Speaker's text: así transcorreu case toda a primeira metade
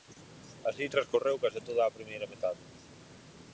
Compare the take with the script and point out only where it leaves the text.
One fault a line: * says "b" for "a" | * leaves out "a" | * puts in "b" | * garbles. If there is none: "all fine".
all fine